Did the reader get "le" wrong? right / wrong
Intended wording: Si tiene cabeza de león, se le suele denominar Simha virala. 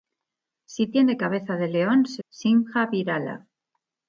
wrong